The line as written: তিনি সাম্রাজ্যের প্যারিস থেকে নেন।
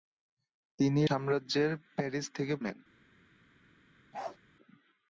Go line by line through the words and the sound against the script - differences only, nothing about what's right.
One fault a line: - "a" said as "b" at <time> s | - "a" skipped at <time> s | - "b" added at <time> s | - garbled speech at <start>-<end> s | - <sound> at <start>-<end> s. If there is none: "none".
- bark at 4.1-4.4 s